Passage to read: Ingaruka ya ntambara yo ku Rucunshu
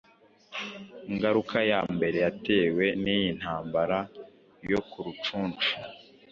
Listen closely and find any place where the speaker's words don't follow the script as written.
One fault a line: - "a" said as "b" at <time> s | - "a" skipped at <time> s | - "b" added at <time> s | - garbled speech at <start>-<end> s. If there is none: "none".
- "mbere yatewe n'iyi" added at 1.9 s